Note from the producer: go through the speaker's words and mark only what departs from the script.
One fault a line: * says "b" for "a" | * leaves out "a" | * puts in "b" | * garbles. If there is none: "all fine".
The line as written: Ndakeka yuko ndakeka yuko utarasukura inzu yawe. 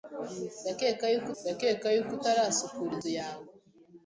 all fine